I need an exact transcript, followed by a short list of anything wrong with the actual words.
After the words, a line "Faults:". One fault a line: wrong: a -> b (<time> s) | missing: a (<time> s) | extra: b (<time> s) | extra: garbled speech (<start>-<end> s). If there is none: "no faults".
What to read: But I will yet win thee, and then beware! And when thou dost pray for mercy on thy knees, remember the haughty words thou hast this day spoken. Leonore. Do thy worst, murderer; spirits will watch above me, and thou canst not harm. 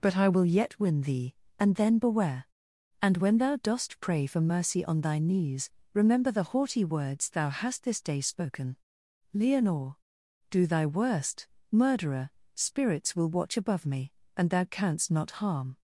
But I will yet win thee, and then beware! And when thou dost pray for mercy on thy knees, remember the haughty words thou hast this day spoken. Leonore. Do thy worst, murderer; spirits will watch above me, and thou canst not harm.
Faults:
no faults